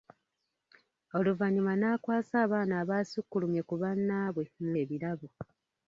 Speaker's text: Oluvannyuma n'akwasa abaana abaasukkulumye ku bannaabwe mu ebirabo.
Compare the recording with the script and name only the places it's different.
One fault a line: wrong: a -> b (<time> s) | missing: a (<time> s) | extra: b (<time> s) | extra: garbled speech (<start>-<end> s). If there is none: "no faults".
no faults